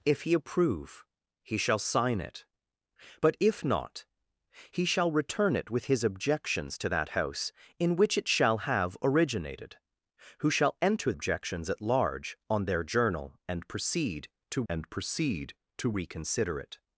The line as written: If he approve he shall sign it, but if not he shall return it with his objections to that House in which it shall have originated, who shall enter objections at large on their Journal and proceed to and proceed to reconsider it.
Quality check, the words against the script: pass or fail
pass